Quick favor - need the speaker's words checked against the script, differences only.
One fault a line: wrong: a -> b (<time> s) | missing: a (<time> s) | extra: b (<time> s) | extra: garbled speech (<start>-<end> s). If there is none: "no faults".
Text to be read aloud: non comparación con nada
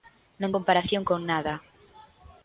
no faults